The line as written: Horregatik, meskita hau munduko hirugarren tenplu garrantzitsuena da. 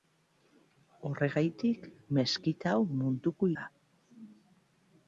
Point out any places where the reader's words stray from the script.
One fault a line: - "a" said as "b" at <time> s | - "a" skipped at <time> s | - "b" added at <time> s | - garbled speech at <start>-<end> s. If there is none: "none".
- "hirugarren tenplu garrantzitsuena" skipped at 3.5 s